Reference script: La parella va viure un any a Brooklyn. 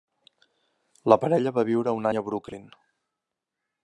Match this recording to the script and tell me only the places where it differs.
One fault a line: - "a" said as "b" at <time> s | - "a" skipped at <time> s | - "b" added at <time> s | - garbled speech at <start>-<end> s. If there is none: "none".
none